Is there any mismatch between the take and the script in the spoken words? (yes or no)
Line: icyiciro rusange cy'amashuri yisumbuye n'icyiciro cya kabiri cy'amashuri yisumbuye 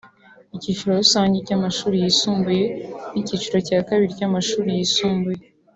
no